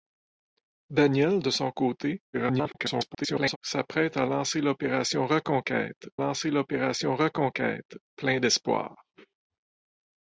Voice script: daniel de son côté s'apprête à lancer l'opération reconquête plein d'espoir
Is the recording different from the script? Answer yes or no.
yes